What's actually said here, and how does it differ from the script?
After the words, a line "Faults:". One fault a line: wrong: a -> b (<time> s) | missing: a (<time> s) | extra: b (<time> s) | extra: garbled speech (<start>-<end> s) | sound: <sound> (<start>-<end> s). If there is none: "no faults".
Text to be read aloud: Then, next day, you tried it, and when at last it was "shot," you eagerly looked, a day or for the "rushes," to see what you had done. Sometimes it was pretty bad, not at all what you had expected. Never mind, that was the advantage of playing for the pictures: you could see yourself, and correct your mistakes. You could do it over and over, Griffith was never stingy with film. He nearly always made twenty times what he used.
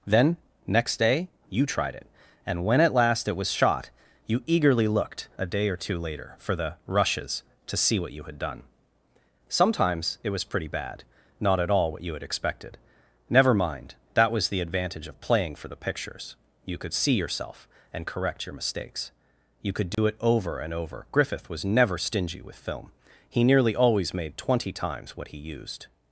Then, next day, you tried it, and when at last it was "shot," you eagerly looked, a day or two later, for the "rushes," to see what you had done. Sometimes it was pretty bad, not at all what you had expected. Never mind, that was the advantage of playing for the pictures: you could see yourself, and correct your mistakes. You could do it over and over, Griffith was never stingy with film. He nearly always made twenty times what he used.
Faults:
extra: two later (5.8 s)
sound: dropout (19.9-20.0 s)